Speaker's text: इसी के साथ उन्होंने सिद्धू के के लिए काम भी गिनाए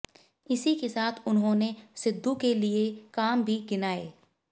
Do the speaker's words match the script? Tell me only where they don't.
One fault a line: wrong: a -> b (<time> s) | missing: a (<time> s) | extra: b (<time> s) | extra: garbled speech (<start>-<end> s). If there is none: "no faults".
missing: के (2.5 s)